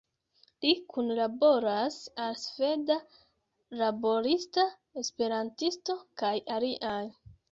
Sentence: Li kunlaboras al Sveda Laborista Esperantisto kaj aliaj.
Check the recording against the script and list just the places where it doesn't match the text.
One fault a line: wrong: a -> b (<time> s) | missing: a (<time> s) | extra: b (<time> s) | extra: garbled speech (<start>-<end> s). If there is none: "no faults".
no faults